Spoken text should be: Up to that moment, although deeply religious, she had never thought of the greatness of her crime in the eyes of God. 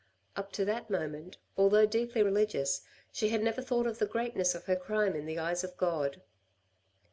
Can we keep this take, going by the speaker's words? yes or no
yes